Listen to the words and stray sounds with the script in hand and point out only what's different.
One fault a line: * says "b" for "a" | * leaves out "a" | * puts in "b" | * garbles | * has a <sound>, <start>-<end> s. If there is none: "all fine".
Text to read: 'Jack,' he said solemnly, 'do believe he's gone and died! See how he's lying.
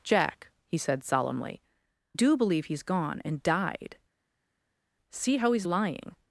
all fine